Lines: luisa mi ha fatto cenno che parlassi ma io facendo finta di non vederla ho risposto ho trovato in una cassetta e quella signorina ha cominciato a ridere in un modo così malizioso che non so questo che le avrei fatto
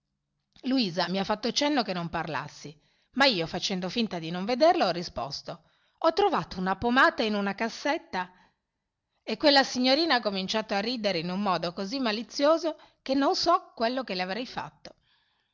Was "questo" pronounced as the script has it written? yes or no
no